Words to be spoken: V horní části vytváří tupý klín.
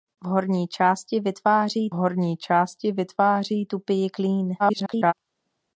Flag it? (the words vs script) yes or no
yes